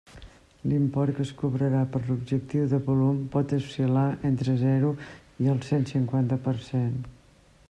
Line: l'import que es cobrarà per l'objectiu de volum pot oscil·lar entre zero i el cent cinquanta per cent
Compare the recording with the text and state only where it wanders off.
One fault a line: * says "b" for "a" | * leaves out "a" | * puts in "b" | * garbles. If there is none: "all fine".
all fine